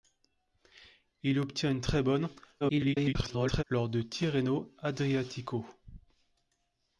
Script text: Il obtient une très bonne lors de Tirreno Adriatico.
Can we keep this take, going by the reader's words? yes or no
no